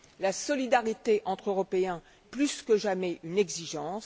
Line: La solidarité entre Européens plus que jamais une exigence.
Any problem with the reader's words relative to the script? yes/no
no